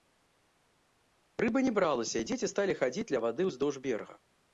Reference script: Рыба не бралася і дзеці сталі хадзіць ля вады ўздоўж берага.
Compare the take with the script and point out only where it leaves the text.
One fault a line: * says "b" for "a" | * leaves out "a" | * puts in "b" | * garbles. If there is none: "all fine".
all fine